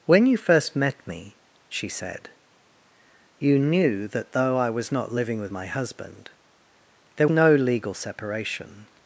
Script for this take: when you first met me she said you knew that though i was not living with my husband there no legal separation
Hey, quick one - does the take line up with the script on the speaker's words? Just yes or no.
yes